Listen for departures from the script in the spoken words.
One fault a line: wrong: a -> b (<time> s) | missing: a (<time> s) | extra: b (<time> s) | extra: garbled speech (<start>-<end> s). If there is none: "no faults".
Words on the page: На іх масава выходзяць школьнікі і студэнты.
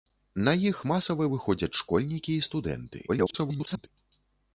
extra: garbled speech (3.1-3.9 s)